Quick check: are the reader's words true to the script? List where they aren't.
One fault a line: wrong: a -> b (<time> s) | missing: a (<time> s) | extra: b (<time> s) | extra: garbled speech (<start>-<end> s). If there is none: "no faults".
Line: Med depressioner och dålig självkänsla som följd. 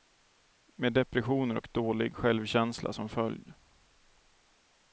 no faults